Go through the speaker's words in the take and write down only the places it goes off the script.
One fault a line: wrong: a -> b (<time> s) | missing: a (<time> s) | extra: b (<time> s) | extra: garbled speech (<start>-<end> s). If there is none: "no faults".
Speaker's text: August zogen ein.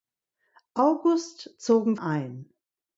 no faults